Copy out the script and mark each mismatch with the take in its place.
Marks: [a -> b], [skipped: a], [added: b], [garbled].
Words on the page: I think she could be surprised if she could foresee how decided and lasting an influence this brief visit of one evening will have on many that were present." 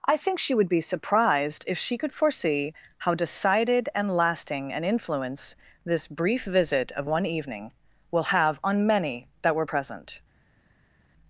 I think she [could -> would] be surprised if she could foresee how decided and lasting an influence this brief visit of one evening will have on many that were present."